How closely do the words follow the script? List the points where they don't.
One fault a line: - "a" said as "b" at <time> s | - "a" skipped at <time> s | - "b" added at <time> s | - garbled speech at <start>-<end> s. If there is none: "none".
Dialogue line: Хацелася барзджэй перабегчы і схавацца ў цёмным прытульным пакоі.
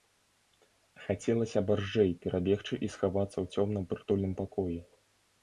none